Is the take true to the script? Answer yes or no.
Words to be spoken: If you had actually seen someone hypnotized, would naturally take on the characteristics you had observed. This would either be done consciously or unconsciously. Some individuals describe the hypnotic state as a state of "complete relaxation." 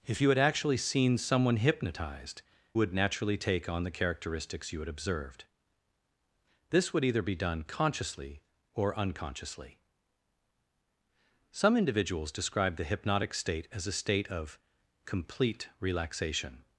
yes